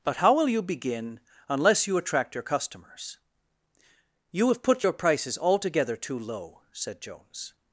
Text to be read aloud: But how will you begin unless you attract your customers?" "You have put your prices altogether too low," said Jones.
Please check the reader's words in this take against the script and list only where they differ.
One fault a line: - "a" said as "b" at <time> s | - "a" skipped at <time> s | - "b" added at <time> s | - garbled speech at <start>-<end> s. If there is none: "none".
none